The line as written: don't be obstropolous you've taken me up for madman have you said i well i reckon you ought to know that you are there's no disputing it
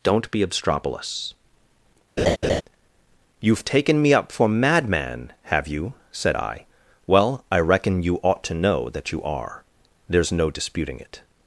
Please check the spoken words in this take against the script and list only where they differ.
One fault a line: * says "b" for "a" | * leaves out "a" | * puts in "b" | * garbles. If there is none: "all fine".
all fine